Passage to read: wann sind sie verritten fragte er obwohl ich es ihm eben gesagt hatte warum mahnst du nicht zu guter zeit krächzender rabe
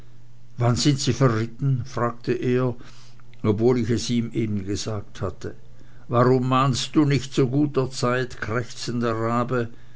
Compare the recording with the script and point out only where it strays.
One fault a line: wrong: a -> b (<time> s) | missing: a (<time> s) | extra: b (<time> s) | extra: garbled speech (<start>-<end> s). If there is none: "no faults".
no faults